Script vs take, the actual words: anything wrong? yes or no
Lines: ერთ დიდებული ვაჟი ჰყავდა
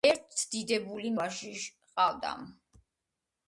no